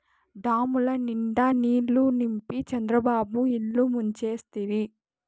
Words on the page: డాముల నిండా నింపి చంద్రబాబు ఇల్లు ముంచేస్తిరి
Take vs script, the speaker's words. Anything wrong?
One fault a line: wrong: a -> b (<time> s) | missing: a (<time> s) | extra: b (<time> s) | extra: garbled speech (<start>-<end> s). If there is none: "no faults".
extra: నీళ్ళు (1.5 s)